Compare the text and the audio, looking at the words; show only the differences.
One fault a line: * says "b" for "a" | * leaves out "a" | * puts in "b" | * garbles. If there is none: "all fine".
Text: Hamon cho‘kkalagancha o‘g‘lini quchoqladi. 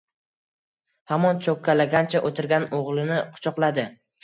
* puts in "o‘tirgan"